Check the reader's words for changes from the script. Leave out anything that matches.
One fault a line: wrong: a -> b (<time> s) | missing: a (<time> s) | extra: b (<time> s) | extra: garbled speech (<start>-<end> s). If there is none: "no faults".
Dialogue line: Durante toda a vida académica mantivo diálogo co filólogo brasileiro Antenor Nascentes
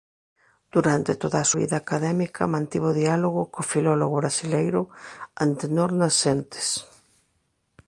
no faults